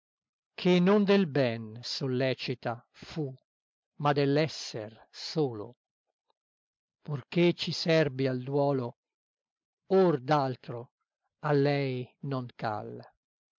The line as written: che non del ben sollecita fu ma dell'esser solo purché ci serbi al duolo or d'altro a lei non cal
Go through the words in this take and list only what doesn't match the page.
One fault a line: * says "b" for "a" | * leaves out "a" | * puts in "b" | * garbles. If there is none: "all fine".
all fine